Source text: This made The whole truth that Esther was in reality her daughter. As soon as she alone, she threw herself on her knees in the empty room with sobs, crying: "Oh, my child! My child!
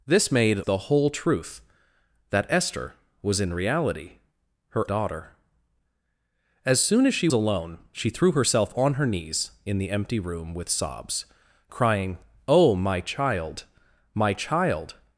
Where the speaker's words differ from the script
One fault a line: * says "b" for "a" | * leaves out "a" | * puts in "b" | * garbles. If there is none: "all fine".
all fine